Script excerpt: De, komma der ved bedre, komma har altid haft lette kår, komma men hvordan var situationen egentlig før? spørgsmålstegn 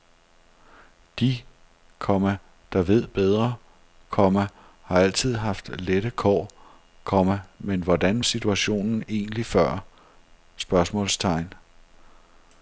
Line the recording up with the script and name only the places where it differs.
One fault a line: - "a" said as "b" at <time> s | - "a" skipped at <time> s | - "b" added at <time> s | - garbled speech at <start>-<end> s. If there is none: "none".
- "var" skipped at 8.2 s